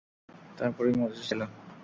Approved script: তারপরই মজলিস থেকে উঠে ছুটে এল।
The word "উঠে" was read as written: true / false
false